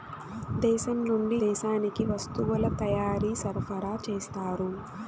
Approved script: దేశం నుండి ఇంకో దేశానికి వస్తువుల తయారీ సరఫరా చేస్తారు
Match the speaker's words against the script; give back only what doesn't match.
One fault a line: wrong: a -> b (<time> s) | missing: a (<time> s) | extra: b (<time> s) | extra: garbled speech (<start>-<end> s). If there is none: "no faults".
missing: ఇంకో (1.4 s)